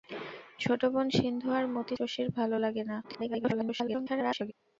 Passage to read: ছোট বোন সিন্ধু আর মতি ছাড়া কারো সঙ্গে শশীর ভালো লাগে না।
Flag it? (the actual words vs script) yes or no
yes